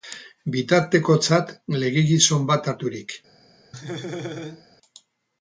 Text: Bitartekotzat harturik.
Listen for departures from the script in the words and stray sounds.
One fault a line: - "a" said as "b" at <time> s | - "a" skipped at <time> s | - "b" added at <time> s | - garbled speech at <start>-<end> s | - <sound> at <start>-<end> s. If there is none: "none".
- "legegizon bat" added at 1.8 s
- laugh at 3.7-4.7 s